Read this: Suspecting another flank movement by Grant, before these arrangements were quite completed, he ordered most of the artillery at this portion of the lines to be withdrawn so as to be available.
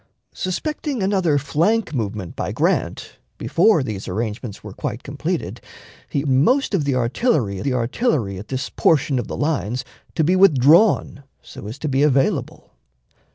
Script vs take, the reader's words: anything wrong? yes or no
yes